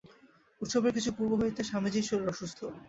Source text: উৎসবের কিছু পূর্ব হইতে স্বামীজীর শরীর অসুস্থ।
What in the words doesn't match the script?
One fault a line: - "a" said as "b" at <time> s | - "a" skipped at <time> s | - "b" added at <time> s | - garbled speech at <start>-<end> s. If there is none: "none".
none